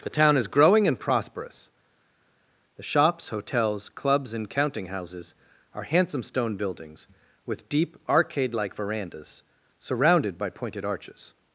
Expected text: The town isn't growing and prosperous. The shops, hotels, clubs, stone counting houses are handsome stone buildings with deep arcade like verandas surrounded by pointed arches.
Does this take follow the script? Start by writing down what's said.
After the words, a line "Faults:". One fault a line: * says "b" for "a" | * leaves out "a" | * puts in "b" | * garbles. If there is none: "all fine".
The town is growing and prosperous. The shops, hotels, clubs, and counting houses are handsome stone buildings with deep arcade like verandas surrounded by pointed arches.
Faults:
* says "is" for "isn't"
* says "and" for "stone"